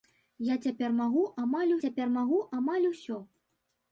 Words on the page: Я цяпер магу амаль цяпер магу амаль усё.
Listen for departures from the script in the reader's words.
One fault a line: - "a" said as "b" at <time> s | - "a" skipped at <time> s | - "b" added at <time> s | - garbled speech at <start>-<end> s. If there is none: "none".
none